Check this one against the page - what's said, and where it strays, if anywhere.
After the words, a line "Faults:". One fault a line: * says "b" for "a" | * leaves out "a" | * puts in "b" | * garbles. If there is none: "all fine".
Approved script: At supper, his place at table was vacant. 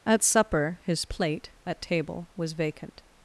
At supper, his plate at table was vacant.
Faults:
* says "plate" for "place"